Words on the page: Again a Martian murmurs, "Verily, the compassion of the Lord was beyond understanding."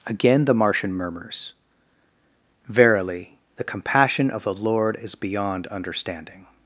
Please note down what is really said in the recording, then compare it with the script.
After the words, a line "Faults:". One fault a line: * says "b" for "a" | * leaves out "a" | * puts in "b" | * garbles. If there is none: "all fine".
Again the Martian murmurs, "Verily, the compassion of the Lord is beyond understanding."
Faults:
* says "the" for "a"
* says "is" for "was"